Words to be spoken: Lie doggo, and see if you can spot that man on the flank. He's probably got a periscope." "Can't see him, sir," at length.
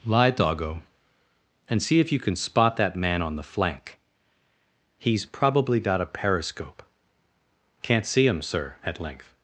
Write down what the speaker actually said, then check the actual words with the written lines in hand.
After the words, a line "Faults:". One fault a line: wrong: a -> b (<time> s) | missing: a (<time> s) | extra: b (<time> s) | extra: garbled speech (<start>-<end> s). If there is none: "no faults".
Lie doggo, and see if you can spot that man on the flank. He's probably got a periscope." "Can't see him, sir," at length.
Faults:
no faults